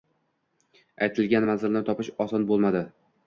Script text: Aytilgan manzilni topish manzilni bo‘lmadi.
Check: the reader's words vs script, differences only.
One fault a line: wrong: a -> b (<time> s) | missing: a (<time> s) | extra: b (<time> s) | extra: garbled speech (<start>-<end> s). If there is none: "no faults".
wrong: manzilni -> oson (2.3 s)